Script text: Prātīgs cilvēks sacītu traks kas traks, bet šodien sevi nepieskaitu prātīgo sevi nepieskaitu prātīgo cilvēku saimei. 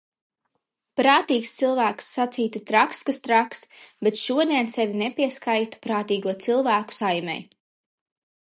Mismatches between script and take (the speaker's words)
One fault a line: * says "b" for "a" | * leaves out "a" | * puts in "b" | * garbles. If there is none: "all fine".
* leaves out "sevi nepieskaitu prātīgo"